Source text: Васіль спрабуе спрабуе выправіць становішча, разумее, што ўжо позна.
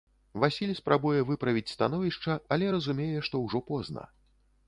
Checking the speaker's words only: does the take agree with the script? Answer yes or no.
no